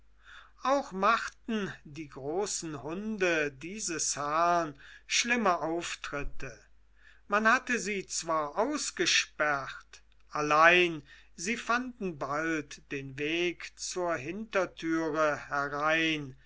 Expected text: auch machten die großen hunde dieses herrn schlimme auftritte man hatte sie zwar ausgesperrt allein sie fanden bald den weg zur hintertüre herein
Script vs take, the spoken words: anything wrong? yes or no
no